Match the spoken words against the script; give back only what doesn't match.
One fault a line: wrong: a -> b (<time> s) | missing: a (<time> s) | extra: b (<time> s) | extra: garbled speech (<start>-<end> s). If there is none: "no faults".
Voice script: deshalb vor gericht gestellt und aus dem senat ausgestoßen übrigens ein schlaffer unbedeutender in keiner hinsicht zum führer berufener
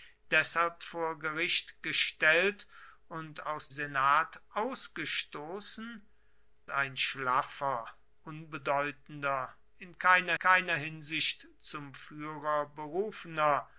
missing: dem (3.7 s)
missing: übrigens (6.1 s)
extra: keiner (10.4 s)